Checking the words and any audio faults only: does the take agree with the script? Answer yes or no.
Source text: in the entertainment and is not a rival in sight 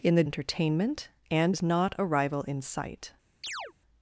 no